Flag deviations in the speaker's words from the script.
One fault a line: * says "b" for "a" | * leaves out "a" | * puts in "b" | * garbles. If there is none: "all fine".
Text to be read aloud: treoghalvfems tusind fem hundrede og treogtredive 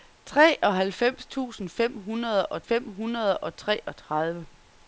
* puts in "fem hundrede og"